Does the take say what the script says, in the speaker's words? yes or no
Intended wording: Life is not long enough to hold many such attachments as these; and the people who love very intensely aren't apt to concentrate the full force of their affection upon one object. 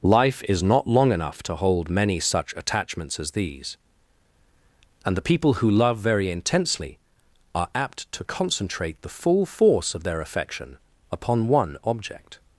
no